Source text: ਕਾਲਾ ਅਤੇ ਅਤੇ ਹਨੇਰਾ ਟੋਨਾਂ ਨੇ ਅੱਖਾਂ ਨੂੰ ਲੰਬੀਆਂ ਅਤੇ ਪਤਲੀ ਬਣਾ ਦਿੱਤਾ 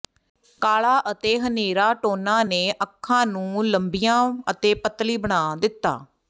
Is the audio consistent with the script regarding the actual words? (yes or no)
no